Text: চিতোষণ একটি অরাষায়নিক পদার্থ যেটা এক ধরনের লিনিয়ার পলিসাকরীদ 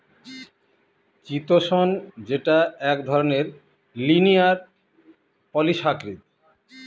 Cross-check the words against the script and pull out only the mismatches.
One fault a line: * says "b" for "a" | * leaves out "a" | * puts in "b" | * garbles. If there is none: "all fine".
* leaves out "একটি অরাষায়নিক পদার্থ"